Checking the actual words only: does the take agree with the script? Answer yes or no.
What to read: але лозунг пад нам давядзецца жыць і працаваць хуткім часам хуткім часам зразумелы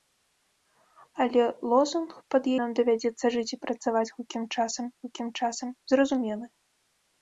yes